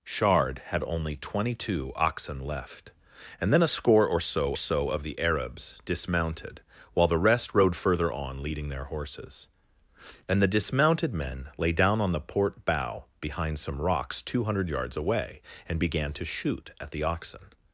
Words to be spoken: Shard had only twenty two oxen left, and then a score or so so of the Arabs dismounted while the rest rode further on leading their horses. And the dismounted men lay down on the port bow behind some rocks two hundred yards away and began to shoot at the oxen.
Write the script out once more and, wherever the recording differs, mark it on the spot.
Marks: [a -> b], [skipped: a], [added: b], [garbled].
Shard had only twenty two oxen left, and then a score or so so of the Arabs dismounted while the rest rode further on leading their horses. And the dismounted men lay down on the port bow behind some rocks two hundred yards away and began to shoot at the oxen.